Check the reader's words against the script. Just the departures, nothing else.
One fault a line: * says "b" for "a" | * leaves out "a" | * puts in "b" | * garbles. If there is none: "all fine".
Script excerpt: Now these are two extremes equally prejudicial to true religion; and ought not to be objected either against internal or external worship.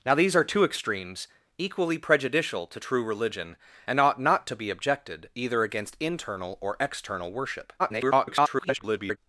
* garbles